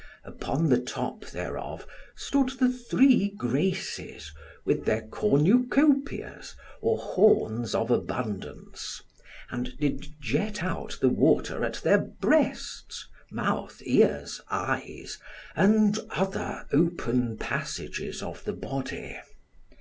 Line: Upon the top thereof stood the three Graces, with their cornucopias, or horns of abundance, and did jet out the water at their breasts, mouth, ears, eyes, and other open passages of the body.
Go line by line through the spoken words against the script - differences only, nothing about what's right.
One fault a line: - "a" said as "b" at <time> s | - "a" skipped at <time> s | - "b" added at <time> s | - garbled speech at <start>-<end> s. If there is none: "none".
none